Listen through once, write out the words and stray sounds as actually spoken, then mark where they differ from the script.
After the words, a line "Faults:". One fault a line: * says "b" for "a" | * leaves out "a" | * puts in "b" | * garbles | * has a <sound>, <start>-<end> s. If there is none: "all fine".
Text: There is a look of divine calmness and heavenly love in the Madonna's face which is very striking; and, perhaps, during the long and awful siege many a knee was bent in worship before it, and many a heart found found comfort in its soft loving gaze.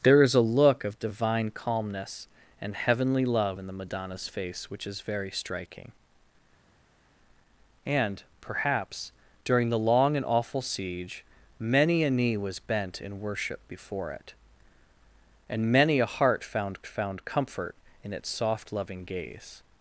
There is a look of divine calmness and heavenly love in the Madonna's face which is very striking; and, perhaps, during the long and awful siege many a knee was bent in worship before it, and many a heart found found comfort in its soft loving gaze.
Faults:
all fine